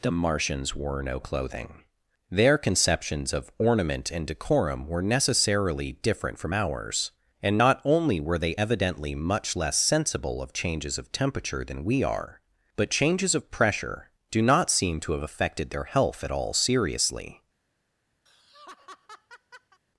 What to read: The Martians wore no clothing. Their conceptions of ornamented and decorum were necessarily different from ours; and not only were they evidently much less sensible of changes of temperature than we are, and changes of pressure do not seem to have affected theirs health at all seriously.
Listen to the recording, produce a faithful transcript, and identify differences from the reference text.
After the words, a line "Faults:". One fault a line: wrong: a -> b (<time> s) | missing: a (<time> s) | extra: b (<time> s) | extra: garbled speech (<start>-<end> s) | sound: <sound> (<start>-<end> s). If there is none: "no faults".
The Martians wore no clothing. Their conceptions of ornament and decorum were necessarily different from ours; and not only were they evidently much less sensible of changes of temperature than we are, but changes of pressure do not seem to have affected their health at all seriously.
Faults:
wrong: ornamented -> ornament (3.6 s)
wrong: and -> but (12.8 s)
wrong: theirs -> their (15.7 s)
sound: laugh (18.3-19.8 s)